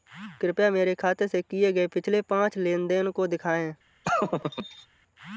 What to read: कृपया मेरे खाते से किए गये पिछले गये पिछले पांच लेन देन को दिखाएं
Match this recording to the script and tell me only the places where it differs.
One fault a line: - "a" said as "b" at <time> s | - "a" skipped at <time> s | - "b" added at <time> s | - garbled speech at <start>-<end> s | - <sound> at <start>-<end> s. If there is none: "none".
- "गये पिछले" skipped at 2.2 s
- laugh at 4.0-4.9 s